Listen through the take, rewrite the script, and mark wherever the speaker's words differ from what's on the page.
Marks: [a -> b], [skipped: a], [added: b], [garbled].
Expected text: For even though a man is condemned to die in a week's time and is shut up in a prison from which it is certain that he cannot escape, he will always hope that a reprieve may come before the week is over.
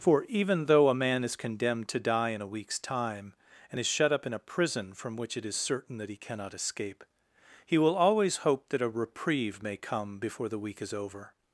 For even though a man is condemned to die in a week's time and is shut up in a prison from which it is certain that he cannot escape, he will always hope that a reprieve may come before the week is over.